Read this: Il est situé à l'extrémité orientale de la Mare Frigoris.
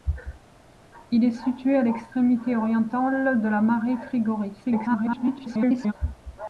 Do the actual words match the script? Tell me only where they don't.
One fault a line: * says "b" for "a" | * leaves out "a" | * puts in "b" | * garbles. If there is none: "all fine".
* garbles